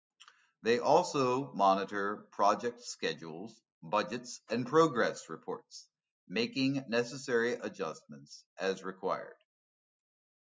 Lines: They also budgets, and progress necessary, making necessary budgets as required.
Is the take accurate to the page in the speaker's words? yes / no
no